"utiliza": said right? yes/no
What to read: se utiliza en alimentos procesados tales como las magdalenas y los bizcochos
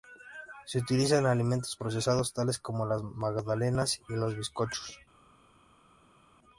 yes